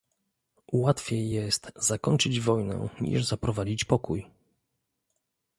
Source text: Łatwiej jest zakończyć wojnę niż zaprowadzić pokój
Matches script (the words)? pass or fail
pass